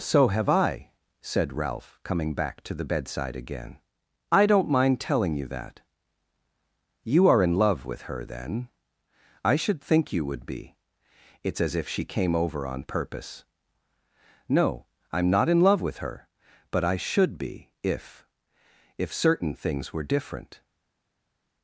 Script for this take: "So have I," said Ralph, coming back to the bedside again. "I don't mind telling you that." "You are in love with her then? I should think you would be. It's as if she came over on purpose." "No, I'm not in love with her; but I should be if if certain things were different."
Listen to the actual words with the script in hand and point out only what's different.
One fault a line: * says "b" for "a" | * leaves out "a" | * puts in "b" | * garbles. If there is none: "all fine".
all fine